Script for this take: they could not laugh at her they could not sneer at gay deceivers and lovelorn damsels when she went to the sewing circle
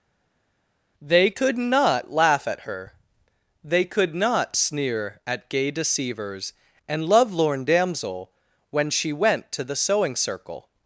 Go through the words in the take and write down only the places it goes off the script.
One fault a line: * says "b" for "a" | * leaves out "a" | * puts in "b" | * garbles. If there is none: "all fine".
* says "damsel" for "damsels"